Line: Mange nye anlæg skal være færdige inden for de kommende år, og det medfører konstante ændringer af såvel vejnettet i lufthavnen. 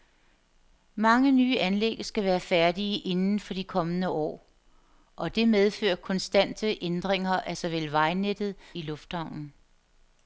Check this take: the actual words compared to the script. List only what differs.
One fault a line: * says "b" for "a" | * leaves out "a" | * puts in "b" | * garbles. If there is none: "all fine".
all fine